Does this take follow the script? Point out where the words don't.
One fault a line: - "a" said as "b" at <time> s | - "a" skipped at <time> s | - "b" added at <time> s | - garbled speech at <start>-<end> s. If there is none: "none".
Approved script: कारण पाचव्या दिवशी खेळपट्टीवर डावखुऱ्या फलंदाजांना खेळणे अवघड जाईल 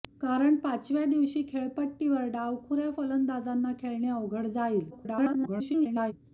- garbled speech at 4.9-6.1 s